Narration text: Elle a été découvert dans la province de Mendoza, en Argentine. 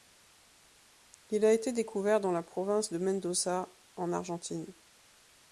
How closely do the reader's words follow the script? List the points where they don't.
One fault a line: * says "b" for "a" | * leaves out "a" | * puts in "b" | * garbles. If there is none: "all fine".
* says "Il" for "Elle"